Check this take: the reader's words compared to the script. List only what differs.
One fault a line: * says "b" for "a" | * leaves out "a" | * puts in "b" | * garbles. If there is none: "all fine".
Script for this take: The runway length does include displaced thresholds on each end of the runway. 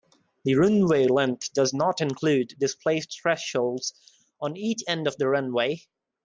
* puts in "not"